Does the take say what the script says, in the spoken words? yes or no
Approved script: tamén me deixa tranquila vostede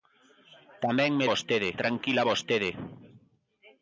no